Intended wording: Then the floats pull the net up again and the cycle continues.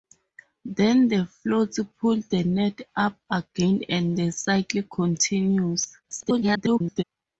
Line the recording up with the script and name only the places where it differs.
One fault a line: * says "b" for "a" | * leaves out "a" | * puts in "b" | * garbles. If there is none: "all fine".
* garbles